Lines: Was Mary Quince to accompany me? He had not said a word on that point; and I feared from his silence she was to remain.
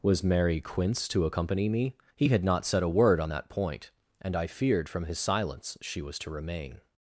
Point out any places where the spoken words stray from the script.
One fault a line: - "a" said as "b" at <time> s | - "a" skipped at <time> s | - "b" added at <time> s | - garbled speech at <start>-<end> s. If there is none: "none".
none